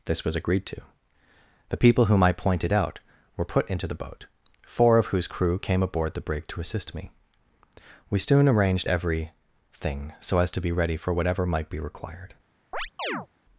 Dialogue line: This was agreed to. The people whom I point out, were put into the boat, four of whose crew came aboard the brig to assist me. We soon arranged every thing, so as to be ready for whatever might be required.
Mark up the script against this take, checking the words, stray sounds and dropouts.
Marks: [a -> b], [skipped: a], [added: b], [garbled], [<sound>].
This was agreed to. The people whom I [point -> pointed] out, were put into the boat, four of whose crew came aboard the brig to assist me. We soon arranged every thing, so as to be ready for whatever might be required. [chirp]